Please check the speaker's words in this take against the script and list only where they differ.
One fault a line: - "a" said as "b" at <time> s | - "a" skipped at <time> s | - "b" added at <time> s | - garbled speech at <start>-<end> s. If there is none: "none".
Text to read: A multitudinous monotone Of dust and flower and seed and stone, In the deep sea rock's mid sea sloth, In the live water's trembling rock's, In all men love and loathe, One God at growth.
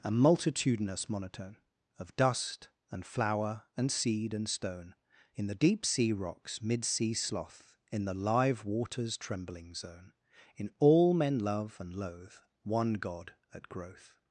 - "rock's" said as "zone" at 9.7 s